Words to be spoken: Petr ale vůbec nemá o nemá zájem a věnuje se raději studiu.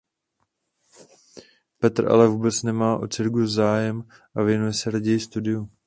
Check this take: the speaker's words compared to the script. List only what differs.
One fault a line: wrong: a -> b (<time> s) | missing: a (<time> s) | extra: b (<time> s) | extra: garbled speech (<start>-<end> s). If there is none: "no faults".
wrong: nemá -> cirkus (3.1 s)